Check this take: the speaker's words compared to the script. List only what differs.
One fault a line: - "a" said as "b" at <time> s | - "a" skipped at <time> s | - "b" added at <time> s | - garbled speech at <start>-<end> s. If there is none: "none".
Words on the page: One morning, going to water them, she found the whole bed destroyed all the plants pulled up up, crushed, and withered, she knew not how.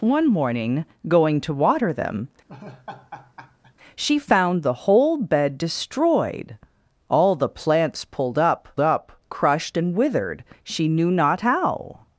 none